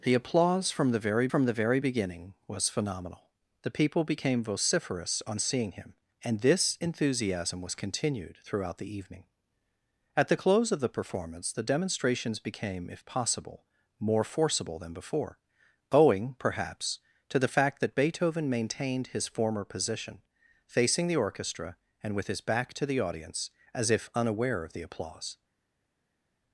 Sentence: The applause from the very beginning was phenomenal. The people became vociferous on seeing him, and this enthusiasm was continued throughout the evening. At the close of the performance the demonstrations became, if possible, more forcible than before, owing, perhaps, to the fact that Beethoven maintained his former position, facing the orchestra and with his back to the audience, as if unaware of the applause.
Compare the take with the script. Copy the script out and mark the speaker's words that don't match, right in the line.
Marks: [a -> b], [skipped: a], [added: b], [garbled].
The applause from the very [added: from the very] beginning was phenomenal. The people became vociferous on seeing him, and this enthusiasm was continued throughout the evening. At the close of the performance the demonstrations became, if possible, more forcible than before, owing, perhaps, to the fact that Beethoven maintained his former position, facing the orchestra and with his back to the audience, as if unaware of the applause.